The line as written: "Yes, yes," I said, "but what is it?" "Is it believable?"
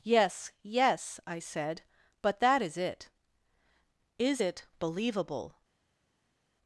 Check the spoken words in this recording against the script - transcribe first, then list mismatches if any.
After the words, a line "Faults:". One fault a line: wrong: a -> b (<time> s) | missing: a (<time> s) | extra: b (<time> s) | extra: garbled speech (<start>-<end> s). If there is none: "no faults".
"Yes, yes," I said, "but that is it?" "Is it believable?"
Faults:
wrong: what -> that (2.4 s)